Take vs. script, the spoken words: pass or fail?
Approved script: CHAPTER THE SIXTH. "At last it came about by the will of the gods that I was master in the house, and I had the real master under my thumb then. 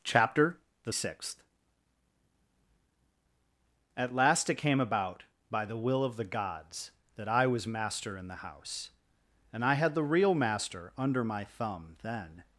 pass